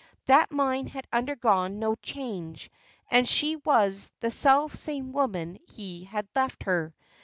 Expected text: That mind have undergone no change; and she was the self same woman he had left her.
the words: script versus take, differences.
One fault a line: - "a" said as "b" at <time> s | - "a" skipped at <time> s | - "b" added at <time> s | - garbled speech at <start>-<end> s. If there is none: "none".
- "have" said as "had" at 0.9 s